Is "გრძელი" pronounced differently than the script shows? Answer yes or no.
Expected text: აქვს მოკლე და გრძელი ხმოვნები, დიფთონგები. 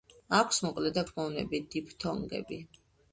yes